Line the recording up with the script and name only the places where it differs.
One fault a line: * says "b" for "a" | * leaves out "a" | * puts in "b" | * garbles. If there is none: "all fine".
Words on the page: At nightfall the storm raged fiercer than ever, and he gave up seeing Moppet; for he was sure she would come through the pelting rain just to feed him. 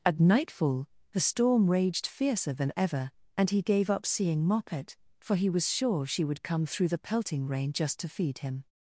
all fine